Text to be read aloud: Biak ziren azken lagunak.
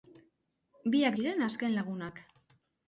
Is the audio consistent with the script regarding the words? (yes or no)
yes